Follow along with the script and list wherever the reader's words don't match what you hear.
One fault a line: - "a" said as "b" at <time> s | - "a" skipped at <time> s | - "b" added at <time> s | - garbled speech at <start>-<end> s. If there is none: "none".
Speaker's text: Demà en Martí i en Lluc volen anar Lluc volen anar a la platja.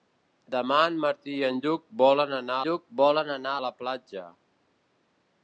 none